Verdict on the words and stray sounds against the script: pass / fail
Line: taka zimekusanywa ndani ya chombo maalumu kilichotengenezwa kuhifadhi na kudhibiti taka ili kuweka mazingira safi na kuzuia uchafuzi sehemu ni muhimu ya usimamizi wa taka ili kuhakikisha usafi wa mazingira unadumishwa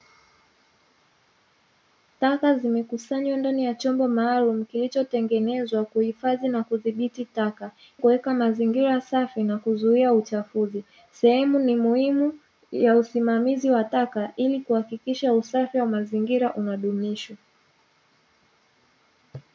fail